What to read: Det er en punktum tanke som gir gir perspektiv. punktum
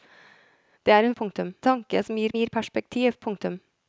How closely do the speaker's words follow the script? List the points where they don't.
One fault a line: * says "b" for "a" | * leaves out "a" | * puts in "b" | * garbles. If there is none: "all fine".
all fine